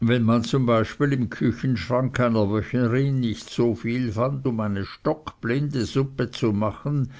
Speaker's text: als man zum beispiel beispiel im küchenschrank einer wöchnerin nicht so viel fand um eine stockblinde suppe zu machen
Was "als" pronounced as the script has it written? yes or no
no